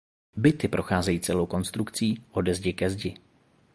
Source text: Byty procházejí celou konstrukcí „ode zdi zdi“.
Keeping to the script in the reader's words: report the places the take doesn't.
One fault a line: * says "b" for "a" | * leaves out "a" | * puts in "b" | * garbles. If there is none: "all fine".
* puts in "ke"